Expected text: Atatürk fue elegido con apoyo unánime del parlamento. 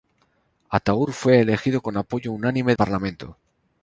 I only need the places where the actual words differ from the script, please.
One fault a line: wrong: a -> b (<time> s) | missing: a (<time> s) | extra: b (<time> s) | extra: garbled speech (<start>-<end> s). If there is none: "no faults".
missing: del (2.8 s)